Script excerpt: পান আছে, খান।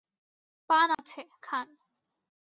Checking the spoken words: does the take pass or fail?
pass